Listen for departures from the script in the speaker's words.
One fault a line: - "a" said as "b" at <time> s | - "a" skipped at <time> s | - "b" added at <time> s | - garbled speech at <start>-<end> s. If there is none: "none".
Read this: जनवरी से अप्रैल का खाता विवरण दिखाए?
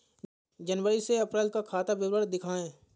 none